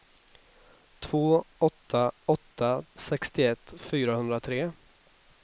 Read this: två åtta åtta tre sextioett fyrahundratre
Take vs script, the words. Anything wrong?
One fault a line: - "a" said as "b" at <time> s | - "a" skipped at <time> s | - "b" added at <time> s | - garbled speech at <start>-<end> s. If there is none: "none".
- "tre" skipped at 2.8 s